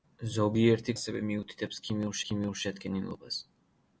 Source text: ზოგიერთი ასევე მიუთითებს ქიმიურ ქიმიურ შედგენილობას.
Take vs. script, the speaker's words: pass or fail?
pass